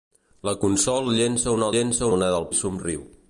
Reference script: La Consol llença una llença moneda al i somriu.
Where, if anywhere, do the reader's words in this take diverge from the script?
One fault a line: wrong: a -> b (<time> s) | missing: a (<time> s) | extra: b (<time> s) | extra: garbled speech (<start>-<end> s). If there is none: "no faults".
no faults